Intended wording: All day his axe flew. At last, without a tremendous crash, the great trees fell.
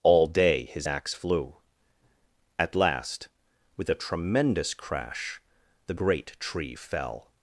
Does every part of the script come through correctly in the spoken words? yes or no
no